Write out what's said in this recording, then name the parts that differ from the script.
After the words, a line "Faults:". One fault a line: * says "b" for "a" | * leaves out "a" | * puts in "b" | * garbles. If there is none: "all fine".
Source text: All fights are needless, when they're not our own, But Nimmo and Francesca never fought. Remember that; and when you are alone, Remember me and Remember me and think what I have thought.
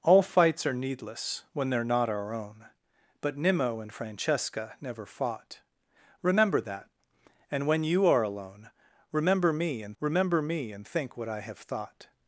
All fights are needless, when they're not our own, But Nimmo and Francesca never fought. Remember that; and when you are alone, Remember me and Remember me and think what I have thought.
Faults:
all fine